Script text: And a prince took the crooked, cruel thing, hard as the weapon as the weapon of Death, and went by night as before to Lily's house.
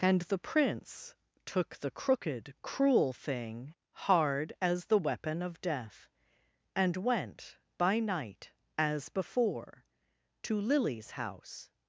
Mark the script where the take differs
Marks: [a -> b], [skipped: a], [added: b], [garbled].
And [a -> the] prince took the crooked, cruel thing, hard as the weapon [skipped: as the weapon] of Death, and went by night as before to Lily's house.